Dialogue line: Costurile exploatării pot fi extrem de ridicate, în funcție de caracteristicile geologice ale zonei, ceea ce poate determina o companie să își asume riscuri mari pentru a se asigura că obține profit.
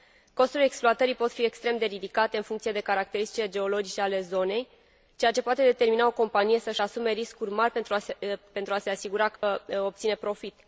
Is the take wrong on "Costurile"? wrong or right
right